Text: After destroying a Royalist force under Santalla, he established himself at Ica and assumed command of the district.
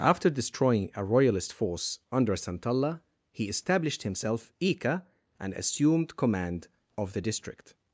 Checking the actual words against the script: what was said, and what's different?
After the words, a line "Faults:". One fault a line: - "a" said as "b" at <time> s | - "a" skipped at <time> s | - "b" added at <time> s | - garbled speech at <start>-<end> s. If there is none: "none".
After destroying a Royalist force under Santalla, he established himself Ica and assumed command of the district.
Faults:
- "at" skipped at 4.5 s